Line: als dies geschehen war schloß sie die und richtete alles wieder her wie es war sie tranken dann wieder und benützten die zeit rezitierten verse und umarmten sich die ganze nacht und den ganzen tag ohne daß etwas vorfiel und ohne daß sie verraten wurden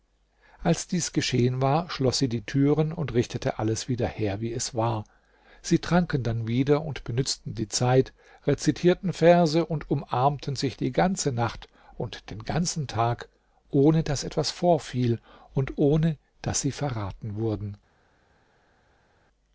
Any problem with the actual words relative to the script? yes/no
yes